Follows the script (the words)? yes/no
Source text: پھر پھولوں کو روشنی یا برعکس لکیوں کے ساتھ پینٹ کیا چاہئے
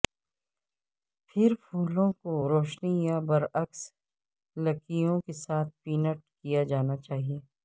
no